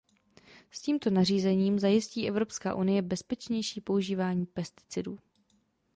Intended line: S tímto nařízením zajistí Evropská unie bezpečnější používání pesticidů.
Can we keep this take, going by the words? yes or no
yes